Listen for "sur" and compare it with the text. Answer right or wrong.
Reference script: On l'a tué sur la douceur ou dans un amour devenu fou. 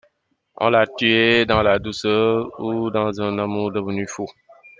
wrong